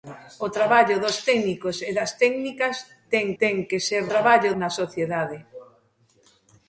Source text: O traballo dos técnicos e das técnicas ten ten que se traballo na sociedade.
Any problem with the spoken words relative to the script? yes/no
no